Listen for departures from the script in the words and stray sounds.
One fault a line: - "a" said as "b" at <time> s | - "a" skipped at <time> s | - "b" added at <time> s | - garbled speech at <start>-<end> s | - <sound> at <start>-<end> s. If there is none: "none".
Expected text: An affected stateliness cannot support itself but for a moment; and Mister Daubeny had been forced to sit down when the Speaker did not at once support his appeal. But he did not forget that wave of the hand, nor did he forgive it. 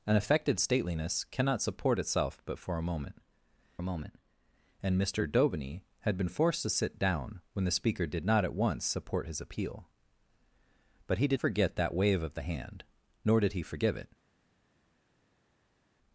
- "a moment" added at 3.8 s
- "not" skipped at 11.4 s